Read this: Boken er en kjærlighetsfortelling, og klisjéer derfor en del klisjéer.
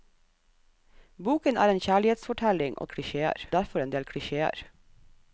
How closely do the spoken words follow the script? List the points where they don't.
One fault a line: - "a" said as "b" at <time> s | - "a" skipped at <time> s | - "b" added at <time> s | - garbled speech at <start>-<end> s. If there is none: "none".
none